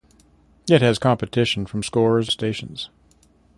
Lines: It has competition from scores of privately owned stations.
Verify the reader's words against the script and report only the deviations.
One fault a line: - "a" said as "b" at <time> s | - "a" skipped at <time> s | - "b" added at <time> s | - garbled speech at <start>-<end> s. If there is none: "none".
- "of privately owned" skipped at 2.3 s